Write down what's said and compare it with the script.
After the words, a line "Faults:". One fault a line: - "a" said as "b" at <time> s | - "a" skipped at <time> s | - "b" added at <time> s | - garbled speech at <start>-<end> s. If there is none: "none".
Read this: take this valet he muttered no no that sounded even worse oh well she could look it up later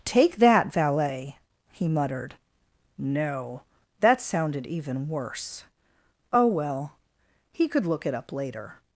take that valet he muttered no that sounded even worse oh well he could look it up later
Faults:
- "this" said as "that" at 0.4 s
- "no" skipped at 3.6 s
- "she" said as "he" at 7.5 s